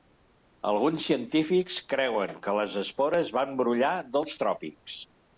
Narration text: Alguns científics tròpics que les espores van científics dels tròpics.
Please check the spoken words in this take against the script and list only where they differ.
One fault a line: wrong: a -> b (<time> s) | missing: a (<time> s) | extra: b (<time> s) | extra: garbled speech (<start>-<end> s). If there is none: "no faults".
wrong: tròpics -> creuen (1.9 s)
wrong: científics -> brollar (3.6 s)